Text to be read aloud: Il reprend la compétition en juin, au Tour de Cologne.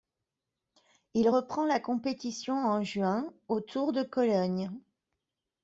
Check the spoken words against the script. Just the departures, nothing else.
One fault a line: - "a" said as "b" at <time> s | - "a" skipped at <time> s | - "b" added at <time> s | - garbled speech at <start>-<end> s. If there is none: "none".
none